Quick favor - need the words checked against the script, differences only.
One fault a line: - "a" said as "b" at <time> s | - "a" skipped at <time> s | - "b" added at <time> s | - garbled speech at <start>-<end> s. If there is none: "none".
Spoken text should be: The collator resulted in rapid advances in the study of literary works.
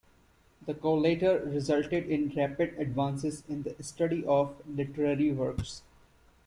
none